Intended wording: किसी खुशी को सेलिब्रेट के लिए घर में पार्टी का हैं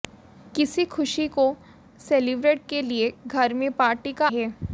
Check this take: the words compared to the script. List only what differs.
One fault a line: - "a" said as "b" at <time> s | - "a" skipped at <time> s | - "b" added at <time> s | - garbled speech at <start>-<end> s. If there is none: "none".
none